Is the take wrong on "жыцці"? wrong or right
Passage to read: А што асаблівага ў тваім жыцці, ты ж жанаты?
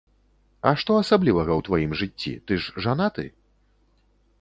right